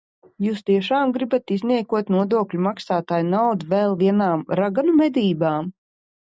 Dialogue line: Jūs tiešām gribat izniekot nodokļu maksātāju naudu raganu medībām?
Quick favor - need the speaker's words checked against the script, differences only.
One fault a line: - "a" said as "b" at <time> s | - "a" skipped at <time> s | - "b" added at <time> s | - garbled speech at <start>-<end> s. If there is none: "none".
- "vēl vienām" added at 3.8 s